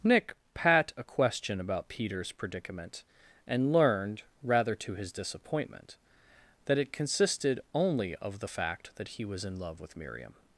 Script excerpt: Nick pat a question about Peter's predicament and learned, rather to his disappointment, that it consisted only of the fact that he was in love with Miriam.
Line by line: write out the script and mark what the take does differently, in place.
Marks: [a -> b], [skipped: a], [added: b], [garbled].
Nick pat a question about Peter's predicament and learned, rather to his disappointment, that it consisted only of the fact that he was in love with Miriam.